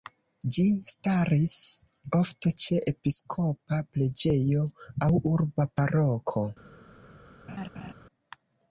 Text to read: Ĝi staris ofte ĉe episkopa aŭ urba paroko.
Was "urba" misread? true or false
false